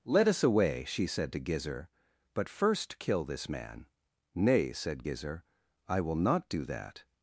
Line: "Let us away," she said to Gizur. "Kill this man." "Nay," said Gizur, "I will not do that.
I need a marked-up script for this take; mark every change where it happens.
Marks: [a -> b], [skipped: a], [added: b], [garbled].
"Let us away," she said to Gizur. [added: But first] "Kill this man." "Nay," said Gizur, "I will not do that.